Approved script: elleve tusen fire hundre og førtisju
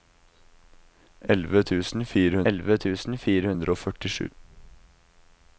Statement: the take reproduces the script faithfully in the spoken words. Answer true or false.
false